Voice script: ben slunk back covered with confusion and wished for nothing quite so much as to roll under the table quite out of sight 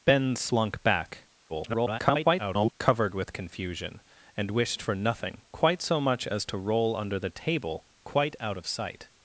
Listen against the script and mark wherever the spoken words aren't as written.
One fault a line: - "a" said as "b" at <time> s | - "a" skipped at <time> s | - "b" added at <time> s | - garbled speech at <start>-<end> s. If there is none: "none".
- garbled speech at 1.5-2.7 s